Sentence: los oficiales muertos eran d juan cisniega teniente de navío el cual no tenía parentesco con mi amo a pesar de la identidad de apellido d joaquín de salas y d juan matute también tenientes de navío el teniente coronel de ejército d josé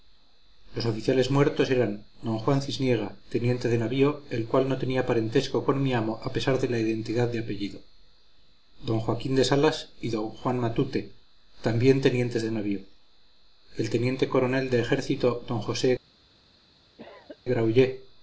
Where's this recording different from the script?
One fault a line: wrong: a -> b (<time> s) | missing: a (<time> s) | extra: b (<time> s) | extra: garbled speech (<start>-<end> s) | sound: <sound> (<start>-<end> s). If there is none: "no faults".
sound: cough (17.0-17.4 s)